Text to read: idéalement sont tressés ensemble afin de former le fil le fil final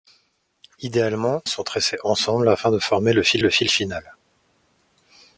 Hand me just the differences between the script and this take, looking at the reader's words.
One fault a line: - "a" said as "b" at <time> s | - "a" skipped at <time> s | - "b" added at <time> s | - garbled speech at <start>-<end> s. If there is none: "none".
none